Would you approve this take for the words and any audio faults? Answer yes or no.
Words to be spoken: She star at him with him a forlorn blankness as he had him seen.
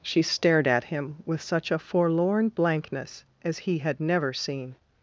no